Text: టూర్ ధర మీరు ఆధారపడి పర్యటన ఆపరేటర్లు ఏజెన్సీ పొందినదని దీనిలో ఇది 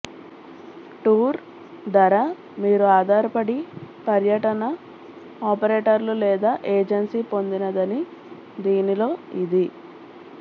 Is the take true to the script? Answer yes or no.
no